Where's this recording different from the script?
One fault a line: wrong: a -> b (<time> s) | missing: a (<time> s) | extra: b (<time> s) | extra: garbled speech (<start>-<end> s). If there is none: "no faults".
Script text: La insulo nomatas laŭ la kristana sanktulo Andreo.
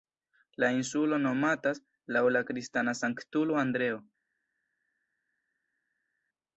no faults